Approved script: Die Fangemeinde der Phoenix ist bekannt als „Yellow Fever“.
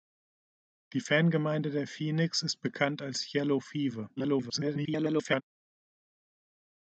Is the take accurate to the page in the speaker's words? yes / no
no